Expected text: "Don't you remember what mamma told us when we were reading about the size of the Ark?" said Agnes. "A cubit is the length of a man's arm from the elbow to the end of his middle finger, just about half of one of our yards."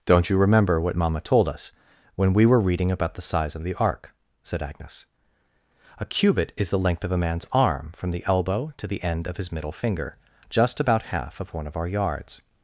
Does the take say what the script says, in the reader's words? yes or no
yes